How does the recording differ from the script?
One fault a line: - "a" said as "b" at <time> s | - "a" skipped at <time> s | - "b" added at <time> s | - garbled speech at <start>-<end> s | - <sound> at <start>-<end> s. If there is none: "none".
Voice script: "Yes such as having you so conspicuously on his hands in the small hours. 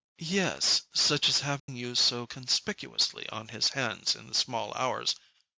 - dropout at 1.6-1.7 s